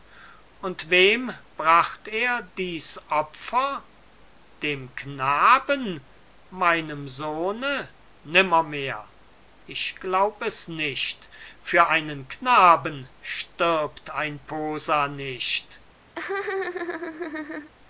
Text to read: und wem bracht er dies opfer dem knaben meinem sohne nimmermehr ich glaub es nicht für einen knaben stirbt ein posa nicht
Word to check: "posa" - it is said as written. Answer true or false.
true